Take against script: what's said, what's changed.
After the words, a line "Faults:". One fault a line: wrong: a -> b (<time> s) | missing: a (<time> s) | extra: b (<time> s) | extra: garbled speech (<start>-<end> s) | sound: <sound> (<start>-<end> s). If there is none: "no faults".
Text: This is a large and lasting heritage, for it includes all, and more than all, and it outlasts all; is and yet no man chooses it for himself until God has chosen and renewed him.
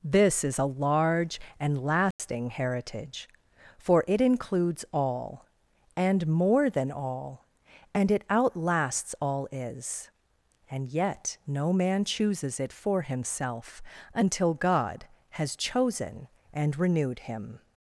This is a large and lasting heritage, for it includes all, and more than all, and it outlasts all; is and yet no man chooses it for himself until God has chosen and renewed him.
Faults:
sound: dropout (2.1-2.2 s)